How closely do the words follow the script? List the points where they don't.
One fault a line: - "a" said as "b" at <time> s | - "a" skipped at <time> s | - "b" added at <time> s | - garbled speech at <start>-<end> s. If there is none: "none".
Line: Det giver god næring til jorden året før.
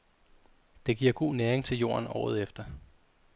- "før" said as "efter" at 2.4 s